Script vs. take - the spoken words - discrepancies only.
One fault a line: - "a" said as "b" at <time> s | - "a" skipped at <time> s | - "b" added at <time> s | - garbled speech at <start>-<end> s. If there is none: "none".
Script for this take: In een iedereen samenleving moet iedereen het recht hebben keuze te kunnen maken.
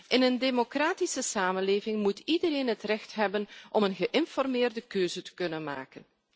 - "iedereen" said as "democratische" at 0.4 s
- "om een geïnformeerde" added at 3.7 s